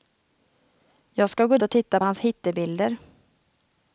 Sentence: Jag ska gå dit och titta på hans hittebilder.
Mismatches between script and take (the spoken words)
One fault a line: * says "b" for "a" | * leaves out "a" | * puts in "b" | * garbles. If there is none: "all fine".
* leaves out "dit"
* leaves out "på"